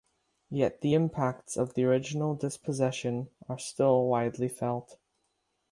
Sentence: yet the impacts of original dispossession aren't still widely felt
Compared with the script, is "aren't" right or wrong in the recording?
wrong